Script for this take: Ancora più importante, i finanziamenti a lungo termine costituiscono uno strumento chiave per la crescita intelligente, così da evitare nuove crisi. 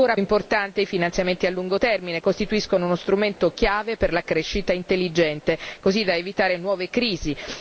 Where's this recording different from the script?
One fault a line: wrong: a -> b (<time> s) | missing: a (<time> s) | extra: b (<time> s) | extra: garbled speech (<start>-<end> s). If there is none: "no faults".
missing: più (0.2 s)